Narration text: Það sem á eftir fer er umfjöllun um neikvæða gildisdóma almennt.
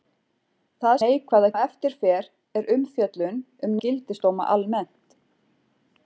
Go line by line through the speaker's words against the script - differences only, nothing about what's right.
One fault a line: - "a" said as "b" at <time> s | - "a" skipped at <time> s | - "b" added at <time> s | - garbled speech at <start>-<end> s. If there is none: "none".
- "sem" said as "neikvæða" at 1.0 s
- "neikvæða" skipped at 3.8 s